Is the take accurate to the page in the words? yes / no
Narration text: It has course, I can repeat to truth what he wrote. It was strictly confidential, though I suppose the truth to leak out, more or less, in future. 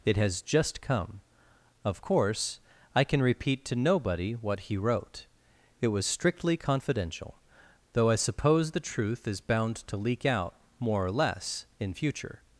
no